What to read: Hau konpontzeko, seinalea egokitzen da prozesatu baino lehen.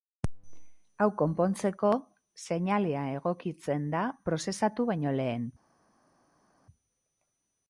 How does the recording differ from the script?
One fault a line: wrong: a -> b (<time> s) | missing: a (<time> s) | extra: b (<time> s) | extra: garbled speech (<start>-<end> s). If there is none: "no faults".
no faults